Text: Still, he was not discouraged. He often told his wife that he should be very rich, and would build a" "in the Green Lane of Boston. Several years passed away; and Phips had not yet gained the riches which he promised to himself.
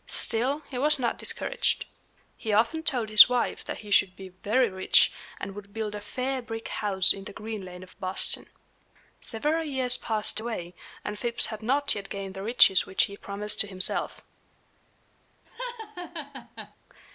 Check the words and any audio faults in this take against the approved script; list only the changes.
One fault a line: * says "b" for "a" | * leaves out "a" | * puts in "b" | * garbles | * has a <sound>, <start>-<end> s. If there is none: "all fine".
* puts in "fair brick house"
* has a laugh, 15.4-16.8 s